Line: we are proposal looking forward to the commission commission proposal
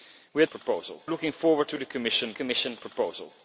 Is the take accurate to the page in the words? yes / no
yes